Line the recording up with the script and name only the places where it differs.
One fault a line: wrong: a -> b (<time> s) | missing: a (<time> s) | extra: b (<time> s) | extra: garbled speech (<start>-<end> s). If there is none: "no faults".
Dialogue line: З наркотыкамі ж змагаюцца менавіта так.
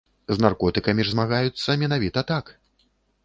no faults